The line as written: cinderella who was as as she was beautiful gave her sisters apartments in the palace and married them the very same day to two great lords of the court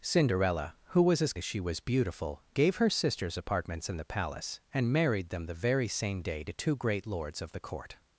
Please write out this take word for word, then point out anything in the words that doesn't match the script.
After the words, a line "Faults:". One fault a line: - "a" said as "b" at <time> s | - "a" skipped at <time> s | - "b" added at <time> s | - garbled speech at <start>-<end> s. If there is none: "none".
cinderella who was as as she was beautiful gave her sisters apartments in the palace and married them the very same day to two great lords of the court
Faults:
none